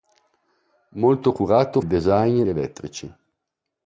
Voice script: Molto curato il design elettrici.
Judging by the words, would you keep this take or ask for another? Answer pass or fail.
pass